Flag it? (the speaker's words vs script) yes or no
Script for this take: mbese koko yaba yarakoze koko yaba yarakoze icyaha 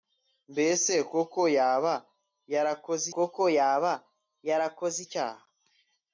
no